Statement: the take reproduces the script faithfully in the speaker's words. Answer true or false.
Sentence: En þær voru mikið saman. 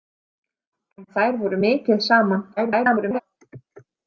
false